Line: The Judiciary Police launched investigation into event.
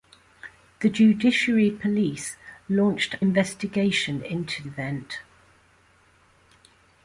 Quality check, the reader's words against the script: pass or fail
pass